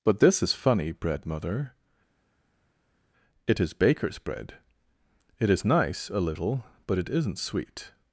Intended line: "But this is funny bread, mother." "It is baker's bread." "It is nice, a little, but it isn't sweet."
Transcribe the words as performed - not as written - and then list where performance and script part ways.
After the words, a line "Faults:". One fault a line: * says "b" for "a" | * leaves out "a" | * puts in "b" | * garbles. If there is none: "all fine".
"But this is funny bread, mother." "It is baker's bread." "It is nice, a little, but it isn't sweet."
Faults:
all fine